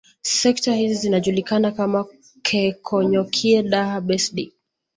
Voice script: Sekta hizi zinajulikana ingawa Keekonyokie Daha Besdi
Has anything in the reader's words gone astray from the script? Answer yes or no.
yes